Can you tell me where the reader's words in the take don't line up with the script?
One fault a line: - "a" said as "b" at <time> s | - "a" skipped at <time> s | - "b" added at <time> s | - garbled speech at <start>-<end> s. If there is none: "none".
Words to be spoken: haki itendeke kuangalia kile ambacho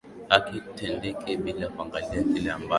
- "bila" added at 1.4 s